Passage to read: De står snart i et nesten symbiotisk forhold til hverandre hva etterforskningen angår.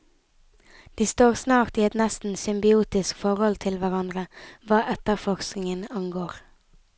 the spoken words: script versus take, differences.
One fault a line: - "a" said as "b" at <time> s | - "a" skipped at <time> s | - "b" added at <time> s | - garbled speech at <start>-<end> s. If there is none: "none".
none